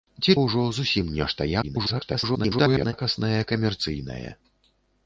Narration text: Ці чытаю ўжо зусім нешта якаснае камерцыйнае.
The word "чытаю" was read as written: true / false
false